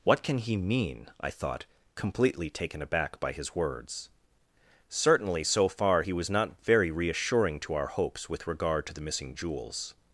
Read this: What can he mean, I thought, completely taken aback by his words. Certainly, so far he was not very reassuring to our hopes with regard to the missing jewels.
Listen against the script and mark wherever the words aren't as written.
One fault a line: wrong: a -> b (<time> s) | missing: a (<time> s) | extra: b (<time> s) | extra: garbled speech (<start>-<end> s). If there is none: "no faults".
no faults